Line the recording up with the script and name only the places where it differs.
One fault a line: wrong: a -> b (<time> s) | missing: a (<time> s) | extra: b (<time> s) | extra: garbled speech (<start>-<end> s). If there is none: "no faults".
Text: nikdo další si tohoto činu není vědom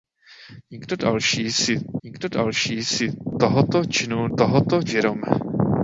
extra: nikdo další si (2.0 s)
wrong: není -> tohoto (4.4 s)